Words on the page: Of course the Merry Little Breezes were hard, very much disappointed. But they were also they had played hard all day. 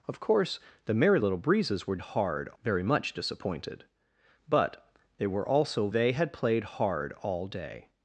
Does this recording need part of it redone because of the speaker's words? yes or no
no